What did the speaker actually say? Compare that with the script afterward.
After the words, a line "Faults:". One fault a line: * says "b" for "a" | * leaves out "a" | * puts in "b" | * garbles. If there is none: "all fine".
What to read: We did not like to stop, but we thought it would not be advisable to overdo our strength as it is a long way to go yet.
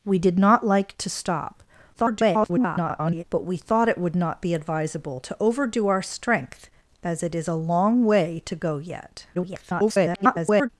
We did not like to stop, [garbled] but we thought it would not be advisable to overdo our strength as it is a long way to go yet. [garbled]
Faults:
* garbles
* garbles